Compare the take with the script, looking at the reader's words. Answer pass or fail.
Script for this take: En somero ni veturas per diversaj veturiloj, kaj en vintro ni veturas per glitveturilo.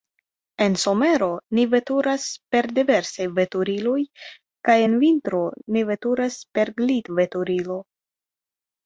pass